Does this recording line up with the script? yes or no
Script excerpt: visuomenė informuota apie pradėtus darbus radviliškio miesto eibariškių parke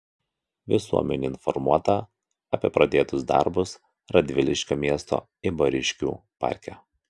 yes